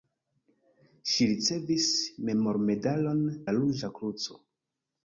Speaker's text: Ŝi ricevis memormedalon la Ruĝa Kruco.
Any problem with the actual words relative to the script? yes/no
no